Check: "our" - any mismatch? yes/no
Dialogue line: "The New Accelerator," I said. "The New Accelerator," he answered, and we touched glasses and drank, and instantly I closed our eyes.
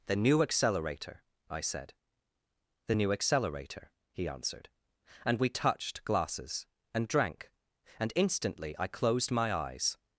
yes